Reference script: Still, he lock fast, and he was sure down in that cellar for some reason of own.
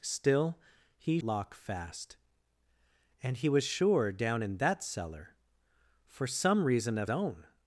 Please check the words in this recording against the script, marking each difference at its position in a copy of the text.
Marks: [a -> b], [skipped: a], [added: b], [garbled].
Still, he lock fast, and he was sure down in that cellar for some reason of own.